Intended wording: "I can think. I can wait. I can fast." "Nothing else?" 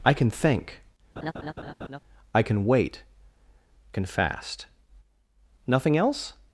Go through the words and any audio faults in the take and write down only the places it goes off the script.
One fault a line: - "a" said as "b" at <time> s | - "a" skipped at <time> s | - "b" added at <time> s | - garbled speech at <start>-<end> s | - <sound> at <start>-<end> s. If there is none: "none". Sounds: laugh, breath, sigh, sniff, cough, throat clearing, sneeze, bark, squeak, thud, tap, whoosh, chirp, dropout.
- laugh at 1.2-2.0 s
- "I" skipped at 3.0 s